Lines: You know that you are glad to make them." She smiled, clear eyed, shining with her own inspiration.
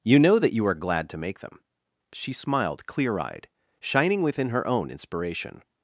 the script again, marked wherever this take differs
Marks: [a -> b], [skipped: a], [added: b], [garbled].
You know that you are glad to make them." She smiled, clear eyed, shining [with -> within] her own inspiration.